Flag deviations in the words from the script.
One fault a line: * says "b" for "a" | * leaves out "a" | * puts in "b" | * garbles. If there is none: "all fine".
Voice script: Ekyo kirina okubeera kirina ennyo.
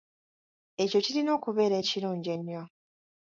* says "ekirungi" for "kirina"